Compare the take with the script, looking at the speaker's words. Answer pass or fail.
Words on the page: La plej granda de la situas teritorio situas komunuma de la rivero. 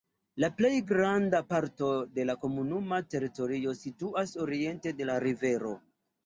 fail